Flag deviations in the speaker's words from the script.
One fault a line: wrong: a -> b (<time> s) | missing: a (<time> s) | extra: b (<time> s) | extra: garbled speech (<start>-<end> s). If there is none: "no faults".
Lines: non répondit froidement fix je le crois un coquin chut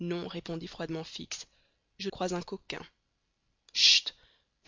missing: le (2.1 s)